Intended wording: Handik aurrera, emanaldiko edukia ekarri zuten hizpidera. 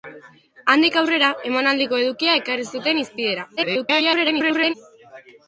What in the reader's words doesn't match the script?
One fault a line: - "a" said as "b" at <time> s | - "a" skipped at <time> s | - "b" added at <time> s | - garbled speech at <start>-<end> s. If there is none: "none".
- garbled speech at 3.6-4.7 s